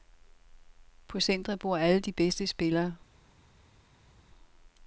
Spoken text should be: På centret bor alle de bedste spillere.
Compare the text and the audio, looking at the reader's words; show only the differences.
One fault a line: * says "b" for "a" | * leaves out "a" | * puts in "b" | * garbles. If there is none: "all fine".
all fine